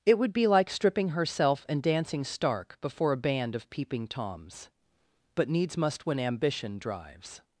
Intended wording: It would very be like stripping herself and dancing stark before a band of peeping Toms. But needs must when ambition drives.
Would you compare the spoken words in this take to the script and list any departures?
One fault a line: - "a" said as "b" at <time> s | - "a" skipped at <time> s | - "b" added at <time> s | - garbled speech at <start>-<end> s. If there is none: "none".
- "very" skipped at 0.3 s